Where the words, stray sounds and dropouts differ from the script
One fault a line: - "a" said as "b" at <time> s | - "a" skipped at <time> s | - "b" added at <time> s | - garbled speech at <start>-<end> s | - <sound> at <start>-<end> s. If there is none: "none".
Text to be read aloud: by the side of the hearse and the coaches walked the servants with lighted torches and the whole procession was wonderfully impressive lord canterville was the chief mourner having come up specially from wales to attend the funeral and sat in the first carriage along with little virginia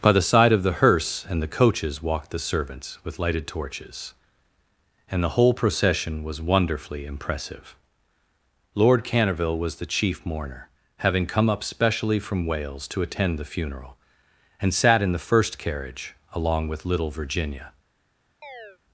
- chirp at 18.4-18.8 s